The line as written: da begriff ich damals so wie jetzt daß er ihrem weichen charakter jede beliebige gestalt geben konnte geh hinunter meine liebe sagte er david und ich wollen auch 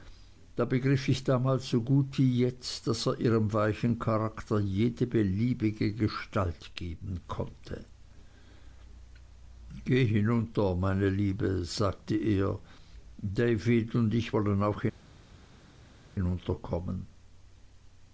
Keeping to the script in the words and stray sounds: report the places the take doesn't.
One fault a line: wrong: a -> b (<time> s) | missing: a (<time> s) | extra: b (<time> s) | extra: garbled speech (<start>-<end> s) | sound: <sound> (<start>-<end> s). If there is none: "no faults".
extra: gut (1.8 s)